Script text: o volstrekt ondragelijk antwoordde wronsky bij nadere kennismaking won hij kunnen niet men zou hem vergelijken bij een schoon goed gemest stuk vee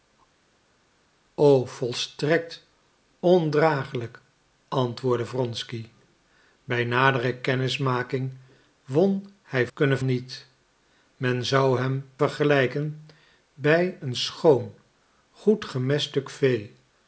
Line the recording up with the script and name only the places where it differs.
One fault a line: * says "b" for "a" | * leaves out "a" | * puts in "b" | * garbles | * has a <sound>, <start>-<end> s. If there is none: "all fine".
all fine